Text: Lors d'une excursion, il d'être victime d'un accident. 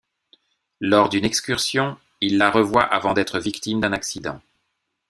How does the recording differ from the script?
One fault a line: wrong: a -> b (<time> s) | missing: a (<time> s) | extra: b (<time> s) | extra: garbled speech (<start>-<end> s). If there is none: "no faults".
extra: la revoit avant (2.4 s)